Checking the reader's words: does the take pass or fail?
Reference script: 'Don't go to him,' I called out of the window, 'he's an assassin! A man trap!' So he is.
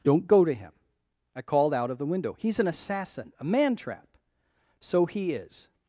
pass